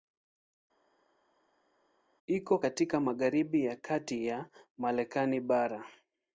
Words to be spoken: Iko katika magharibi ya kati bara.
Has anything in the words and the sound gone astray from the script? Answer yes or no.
yes